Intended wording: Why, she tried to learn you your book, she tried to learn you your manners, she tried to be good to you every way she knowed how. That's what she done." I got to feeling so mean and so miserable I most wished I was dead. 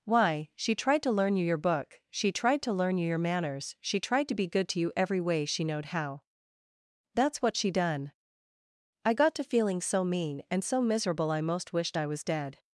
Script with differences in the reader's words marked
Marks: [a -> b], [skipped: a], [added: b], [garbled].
Why, she tried to learn you your book, she tried to learn you your manners, she tried to be good to you every way she knowed how. That's what she done." I got to feeling so mean and so miserable I most wished I was dead.